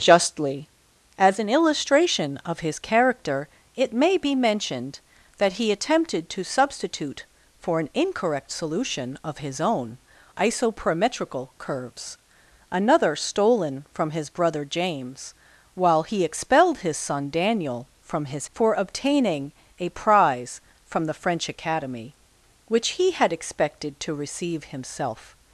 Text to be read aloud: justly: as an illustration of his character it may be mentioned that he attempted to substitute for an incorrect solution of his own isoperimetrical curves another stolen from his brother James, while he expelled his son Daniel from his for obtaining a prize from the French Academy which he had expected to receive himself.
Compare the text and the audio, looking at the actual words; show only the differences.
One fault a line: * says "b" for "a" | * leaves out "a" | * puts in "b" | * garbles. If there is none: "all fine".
all fine